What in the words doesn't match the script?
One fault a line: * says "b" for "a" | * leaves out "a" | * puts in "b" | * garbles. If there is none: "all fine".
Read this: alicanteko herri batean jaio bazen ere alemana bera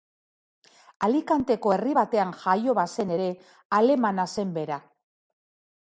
* puts in "zen"